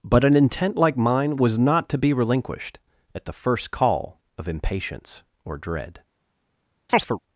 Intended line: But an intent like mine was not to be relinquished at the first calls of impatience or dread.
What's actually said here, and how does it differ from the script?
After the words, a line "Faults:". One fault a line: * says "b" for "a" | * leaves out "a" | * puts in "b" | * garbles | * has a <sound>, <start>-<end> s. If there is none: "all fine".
But an intent like mine was not to be relinquished at the first call of impatience or dread.
Faults:
* says "call" for "calls"
* has a chirp, 6.9-7.2 s